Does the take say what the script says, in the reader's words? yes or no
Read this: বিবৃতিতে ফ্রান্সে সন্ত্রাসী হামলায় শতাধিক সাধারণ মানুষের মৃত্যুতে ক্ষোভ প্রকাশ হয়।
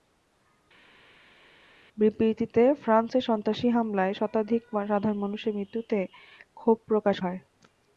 yes